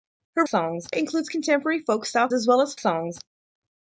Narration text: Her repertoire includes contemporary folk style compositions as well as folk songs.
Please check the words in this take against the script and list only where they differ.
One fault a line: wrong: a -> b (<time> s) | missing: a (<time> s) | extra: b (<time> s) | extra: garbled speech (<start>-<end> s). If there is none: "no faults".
wrong: repertoire -> songs (0.5 s)
missing: compositions (2.3 s)
missing: folk (2.7 s)